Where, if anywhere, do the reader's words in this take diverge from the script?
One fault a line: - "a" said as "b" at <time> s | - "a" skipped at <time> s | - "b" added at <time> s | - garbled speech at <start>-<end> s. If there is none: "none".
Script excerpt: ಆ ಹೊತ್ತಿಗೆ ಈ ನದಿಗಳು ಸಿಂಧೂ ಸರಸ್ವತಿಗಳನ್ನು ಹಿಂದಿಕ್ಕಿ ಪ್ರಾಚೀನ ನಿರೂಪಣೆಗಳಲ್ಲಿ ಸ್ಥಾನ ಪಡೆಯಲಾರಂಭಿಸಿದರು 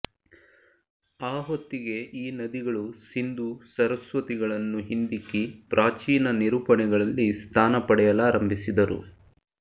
none